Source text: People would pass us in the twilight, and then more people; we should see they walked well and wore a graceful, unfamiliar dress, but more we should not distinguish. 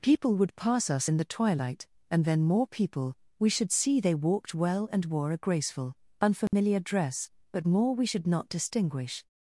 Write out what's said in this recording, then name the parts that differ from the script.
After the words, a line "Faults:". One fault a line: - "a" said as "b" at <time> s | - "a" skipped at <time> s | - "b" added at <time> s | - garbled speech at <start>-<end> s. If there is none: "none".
People would pass us in the twilight, and then more people; we should see they walked well and wore a graceful, unfamiliar dress, but more we should not distinguish.
Faults:
none